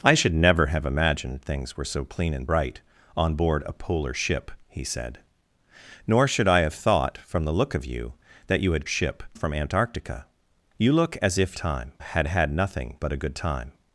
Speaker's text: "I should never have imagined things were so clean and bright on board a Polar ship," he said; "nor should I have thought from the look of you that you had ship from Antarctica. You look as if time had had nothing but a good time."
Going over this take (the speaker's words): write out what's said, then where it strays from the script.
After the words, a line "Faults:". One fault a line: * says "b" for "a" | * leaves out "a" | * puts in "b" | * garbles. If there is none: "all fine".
"I should never have imagined things were so clean and bright on board a Polar ship," he said; "nor should I have thought from the look of you that you had ship from Antarctica. You look as if time had had nothing but a good time."
Faults:
all fine